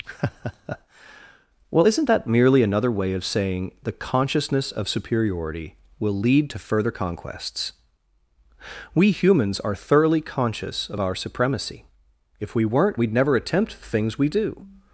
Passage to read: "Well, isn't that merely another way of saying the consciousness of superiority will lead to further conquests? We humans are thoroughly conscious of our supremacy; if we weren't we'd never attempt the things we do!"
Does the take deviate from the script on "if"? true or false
false